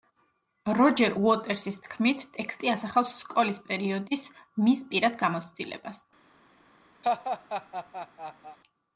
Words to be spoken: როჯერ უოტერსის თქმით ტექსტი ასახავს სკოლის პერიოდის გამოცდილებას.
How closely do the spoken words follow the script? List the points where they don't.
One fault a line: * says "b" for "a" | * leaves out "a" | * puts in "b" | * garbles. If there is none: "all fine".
* puts in "მის პირად"